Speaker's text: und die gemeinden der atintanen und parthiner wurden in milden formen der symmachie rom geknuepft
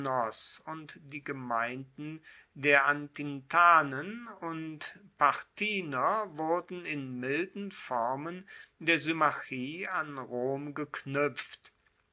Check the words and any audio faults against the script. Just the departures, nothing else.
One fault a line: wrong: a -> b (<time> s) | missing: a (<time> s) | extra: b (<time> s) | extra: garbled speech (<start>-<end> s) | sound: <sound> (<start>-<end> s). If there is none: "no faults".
extra: an (9.9 s)